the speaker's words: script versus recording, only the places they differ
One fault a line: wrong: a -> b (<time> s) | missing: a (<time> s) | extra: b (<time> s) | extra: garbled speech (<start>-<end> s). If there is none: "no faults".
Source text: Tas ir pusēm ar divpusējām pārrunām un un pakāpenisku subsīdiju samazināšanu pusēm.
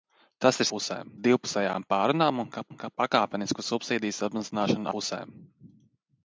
no faults